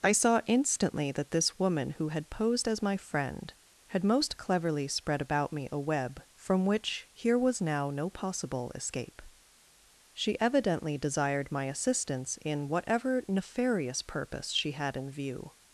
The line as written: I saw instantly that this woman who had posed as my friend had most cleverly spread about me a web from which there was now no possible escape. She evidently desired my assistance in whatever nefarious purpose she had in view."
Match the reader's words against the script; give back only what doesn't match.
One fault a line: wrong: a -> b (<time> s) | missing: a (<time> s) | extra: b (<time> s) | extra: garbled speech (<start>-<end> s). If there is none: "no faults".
wrong: there -> here (7.1 s)